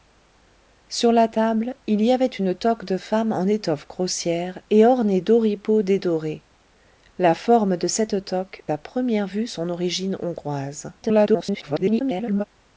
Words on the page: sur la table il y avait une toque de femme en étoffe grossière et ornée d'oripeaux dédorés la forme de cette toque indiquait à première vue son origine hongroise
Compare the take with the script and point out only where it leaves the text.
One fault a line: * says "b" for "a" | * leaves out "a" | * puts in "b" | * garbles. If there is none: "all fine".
* leaves out "indiquait"
* garbles